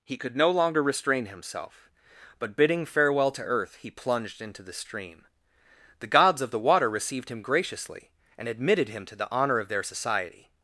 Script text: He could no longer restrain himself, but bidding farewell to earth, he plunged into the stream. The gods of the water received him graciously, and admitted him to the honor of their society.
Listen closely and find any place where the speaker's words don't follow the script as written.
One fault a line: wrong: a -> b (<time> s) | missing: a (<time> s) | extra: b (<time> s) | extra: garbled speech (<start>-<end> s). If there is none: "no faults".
no faults